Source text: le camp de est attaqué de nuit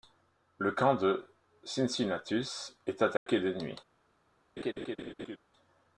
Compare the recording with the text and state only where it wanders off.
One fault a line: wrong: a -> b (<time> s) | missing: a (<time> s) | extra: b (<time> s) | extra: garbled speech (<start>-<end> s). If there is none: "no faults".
extra: cincinnatus (1.6 s)